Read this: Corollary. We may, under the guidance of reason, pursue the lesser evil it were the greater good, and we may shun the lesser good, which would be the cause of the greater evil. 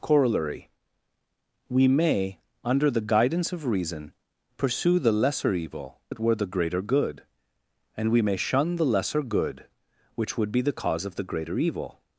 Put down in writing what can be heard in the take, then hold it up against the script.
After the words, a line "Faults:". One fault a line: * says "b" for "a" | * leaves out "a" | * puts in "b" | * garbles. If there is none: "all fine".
Corollary. We may, under the guidance of reason, pursue the lesser evil it were the greater good, and we may shun the lesser good, which would be the cause of the greater evil.
Faults:
all fine